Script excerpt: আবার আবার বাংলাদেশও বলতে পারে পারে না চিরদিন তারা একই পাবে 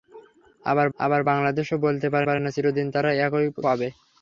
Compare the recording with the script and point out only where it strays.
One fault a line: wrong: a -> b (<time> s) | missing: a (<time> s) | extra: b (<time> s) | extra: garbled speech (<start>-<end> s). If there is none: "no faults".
no faults